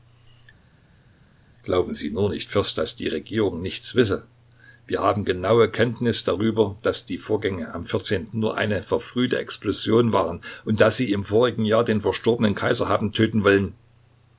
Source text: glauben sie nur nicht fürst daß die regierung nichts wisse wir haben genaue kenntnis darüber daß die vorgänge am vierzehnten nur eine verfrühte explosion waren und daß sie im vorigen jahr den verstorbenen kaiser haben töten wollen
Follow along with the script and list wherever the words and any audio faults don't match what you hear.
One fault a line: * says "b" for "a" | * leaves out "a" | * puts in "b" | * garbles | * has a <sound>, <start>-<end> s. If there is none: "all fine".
all fine